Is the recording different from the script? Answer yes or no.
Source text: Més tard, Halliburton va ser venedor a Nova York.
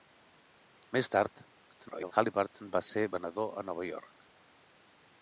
yes